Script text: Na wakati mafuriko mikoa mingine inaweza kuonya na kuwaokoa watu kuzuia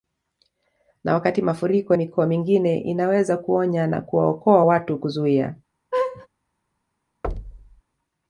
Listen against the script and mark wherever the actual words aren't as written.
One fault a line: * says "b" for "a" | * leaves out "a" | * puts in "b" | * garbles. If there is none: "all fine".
all fine